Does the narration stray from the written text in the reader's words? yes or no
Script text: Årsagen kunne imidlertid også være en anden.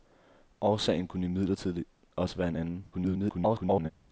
yes